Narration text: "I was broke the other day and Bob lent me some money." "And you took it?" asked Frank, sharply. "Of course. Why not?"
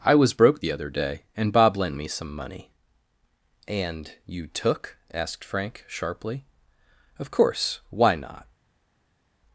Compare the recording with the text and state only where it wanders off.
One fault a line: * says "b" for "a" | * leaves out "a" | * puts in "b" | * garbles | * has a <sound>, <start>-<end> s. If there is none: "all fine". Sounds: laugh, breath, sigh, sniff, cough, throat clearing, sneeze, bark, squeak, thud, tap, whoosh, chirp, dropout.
* leaves out "it"